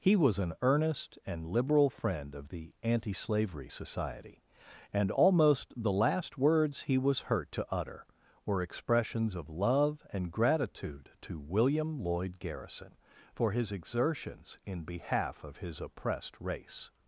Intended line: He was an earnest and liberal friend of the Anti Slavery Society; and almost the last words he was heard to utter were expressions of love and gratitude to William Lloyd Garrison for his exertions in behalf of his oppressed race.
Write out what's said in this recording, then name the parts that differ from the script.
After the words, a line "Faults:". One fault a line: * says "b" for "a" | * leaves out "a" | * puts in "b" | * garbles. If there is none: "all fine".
He was an earnest and liberal friend of the Anti Slavery Society; and almost the last words he was hurt to utter were expressions of love and gratitude to William Lloyd Garrison for his exertions in behalf of his oppressed race.
Faults:
* says "hurt" for "heard"